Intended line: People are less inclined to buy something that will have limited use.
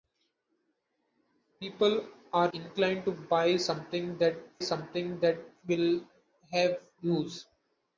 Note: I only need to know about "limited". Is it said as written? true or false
false